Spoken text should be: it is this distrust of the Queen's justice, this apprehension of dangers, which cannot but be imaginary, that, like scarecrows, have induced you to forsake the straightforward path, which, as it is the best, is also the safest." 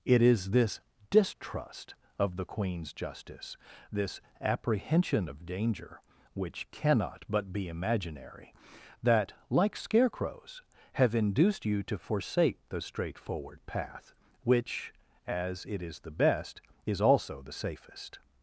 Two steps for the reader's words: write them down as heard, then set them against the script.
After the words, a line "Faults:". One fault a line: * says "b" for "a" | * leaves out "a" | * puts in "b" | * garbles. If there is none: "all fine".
it is this distrust of the Queen's justice, this apprehension of danger, which cannot but be imaginary, that, like scarecrows, have induced you to forsake the straightforward path, which, as it is the best, is also the safest."
Faults:
* says "danger" for "dangers"